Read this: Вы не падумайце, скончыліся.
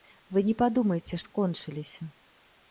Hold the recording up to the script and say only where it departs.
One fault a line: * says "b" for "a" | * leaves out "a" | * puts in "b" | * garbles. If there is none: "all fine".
all fine